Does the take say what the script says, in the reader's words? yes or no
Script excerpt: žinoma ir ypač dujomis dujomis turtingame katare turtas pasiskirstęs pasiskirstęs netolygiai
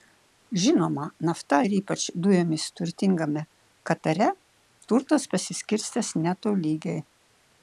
no